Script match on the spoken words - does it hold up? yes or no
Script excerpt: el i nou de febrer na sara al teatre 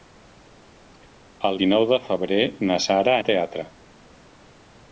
yes